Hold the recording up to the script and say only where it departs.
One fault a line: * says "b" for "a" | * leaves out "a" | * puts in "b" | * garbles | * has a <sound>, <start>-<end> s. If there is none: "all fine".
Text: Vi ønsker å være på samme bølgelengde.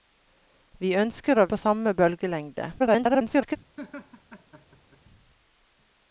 * leaves out "være"
* garbles
* has a laugh, 3.8-5.0 s